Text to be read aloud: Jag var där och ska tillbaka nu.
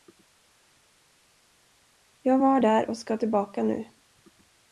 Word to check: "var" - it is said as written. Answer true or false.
true